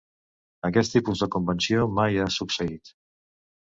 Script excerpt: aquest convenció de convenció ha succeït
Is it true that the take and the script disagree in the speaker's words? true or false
true